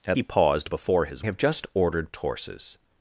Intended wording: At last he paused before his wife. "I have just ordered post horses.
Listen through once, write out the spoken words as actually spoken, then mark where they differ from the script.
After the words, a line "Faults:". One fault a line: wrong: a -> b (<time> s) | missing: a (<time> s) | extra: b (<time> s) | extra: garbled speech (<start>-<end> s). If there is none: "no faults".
At he paused before his have just ordered horses.
Faults:
missing: last (0.2 s)
missing: wife I (1.2 s)
missing: post (2.1 s)